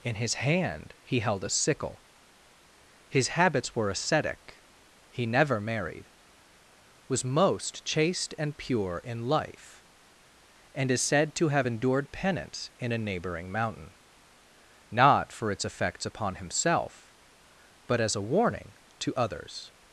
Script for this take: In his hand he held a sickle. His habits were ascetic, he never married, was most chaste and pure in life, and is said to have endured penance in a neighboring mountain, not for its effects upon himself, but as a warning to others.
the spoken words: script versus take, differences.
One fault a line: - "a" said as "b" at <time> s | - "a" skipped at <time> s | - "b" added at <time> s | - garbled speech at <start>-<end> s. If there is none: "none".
none